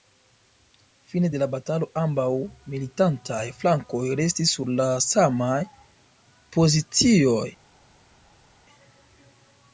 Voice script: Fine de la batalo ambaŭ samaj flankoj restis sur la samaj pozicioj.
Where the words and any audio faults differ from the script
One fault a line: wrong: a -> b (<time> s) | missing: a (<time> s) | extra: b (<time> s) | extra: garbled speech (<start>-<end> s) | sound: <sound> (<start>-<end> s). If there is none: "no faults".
wrong: samaj -> militantaj (2.7 s)